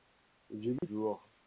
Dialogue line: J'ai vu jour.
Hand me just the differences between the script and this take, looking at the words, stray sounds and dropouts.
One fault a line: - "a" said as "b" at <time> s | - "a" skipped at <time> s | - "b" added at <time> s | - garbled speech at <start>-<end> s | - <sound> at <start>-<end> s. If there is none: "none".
- dropout at 0.8-0.8 s